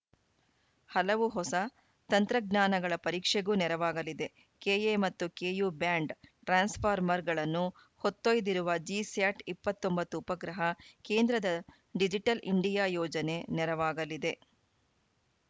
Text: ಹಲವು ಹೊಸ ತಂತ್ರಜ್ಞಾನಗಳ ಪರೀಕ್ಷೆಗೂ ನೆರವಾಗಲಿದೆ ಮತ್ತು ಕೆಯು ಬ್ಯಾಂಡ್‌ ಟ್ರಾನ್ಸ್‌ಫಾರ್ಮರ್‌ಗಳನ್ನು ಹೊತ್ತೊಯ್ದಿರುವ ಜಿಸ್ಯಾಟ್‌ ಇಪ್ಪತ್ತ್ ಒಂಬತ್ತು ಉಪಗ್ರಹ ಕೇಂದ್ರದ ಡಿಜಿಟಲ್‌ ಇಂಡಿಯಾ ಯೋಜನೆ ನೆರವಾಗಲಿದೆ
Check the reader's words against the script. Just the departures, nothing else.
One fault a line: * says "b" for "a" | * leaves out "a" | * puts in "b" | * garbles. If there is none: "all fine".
* puts in "ಕೆಎ"